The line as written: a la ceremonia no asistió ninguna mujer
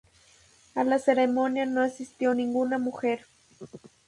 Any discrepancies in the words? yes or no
no